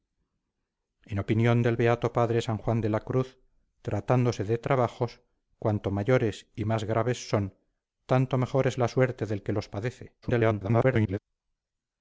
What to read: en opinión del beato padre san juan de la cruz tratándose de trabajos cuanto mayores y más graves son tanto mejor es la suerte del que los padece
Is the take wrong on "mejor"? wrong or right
right